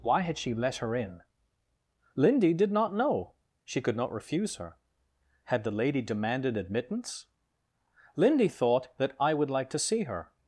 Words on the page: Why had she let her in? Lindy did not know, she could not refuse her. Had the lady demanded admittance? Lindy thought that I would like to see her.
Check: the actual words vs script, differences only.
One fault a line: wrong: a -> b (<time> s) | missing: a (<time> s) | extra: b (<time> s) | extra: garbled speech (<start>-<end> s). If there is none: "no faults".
no faults